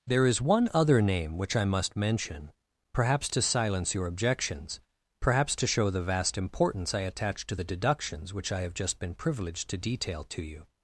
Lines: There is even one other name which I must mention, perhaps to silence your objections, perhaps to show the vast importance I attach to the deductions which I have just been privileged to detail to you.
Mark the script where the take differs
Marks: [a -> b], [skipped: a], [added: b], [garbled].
There is [skipped: even] one other name which I must mention, perhaps to silence your objections, perhaps to show the vast importance I attach to the deductions which I have just been privileged to detail to you.